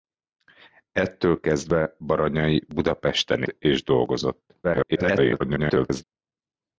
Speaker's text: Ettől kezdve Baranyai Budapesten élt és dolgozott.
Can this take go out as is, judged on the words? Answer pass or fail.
fail